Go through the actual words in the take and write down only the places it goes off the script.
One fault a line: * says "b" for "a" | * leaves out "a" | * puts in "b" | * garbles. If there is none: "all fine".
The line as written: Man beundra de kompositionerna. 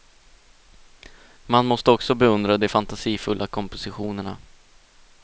* puts in "måste också"
* puts in "fantasifulla"